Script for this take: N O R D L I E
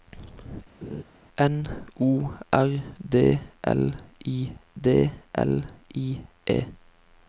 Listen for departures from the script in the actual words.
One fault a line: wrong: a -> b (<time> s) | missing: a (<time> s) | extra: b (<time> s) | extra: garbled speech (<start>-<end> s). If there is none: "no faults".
extra: D L I (4.8 s)